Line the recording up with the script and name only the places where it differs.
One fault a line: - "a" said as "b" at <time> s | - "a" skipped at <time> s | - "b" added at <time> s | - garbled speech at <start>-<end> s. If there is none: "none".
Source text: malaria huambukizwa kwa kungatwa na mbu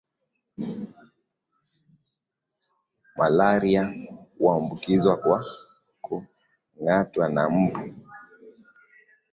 none